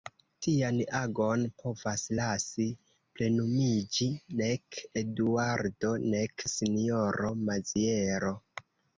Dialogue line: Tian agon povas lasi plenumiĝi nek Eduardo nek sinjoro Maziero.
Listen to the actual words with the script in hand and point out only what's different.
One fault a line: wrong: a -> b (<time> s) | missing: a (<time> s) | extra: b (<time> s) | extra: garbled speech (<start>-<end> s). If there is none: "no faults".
no faults